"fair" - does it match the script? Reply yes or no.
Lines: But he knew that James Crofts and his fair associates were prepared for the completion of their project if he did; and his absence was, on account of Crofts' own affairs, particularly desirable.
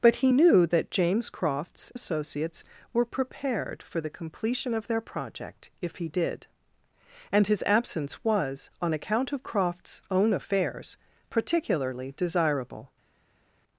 no